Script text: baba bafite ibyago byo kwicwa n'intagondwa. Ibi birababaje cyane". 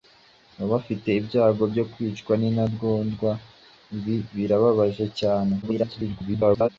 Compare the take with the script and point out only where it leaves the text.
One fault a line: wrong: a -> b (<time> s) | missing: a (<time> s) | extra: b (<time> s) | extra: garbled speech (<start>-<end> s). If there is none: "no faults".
extra: garbled speech (5.6-6.7 s)